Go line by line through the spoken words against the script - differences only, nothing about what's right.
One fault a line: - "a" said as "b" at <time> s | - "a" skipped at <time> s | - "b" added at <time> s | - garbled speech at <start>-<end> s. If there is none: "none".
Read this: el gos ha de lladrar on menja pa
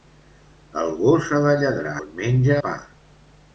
none